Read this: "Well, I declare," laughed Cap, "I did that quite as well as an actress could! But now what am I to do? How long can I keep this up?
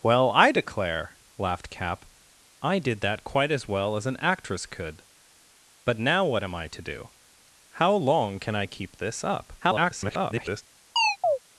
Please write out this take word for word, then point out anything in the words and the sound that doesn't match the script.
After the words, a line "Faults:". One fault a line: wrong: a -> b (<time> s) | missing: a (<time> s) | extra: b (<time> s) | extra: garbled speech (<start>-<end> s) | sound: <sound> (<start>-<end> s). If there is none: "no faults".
"Well, I declare," laughed Cap, "I did that quite as well as an actress could! But now what am I to do? How long can I keep this up? [garbled]
Faults:
extra: garbled speech (9.6-10.6 s)
sound: chirp (11.0-11.4 s)